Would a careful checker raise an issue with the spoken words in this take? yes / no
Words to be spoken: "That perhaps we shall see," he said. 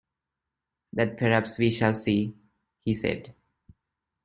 no